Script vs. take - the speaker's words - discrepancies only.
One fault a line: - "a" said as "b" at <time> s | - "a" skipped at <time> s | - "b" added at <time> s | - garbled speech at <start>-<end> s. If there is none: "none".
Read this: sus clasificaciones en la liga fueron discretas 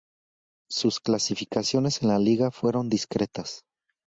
none